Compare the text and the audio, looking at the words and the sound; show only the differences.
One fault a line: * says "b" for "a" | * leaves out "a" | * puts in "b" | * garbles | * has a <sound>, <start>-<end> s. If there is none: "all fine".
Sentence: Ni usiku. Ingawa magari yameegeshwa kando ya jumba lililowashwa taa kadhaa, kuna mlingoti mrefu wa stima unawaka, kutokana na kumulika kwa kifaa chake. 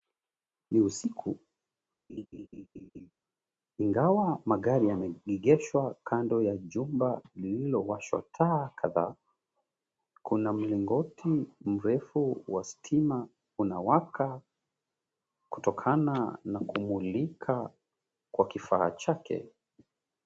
* has a laugh, 2.1-3.1 s